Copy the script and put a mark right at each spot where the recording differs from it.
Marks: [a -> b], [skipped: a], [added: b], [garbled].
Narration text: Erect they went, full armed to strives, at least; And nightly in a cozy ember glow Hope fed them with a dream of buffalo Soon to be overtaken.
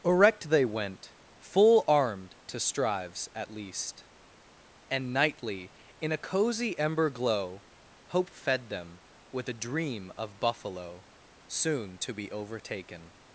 Erect they went, full armed to strives, at least; And nightly in a cozy ember glow Hope fed them with a dream of buffalo Soon to be overtaken.